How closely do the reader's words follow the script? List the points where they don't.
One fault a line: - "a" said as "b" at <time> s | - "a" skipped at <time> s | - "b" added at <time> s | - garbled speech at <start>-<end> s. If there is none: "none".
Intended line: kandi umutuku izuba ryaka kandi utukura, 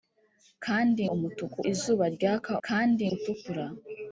none